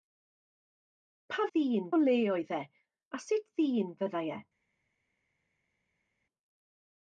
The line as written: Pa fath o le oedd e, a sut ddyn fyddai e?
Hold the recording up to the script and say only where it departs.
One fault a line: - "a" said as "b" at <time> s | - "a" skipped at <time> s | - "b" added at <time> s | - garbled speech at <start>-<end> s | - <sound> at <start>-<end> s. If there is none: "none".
- "fath" said as "ddyn" at 1.5 s